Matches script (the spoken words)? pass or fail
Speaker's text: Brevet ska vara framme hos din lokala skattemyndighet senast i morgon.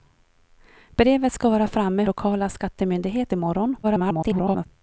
fail